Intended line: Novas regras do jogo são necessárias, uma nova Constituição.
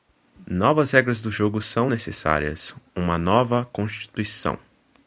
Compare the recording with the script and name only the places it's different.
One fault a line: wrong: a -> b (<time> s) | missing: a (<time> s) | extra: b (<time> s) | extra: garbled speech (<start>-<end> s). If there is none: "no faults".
no faults